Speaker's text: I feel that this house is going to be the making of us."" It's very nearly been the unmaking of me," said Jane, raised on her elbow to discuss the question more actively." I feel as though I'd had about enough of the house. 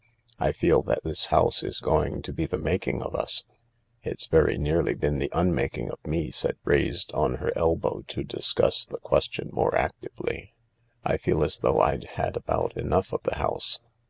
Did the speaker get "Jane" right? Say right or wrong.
wrong